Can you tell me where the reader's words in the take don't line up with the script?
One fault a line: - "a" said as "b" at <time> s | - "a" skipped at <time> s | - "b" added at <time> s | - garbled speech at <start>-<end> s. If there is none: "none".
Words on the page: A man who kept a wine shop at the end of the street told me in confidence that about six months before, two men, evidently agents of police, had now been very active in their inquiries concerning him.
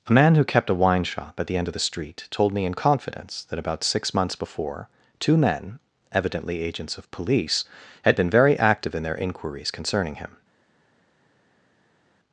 - "now" skipped at 8.1 s